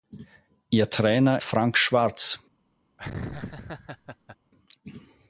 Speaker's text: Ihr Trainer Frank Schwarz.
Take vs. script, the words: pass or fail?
pass